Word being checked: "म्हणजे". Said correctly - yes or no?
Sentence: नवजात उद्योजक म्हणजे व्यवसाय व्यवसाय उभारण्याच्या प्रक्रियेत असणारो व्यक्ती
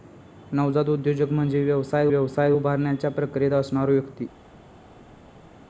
yes